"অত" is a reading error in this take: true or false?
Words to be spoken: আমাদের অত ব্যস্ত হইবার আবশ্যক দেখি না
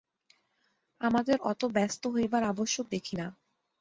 false